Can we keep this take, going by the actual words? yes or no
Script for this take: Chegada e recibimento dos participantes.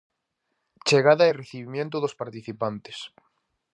yes